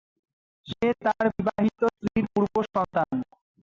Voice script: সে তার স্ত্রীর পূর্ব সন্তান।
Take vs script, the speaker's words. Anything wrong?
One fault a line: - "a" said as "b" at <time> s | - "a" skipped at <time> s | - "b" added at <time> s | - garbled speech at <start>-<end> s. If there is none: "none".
- "বিবাহিত" added at 1.4 s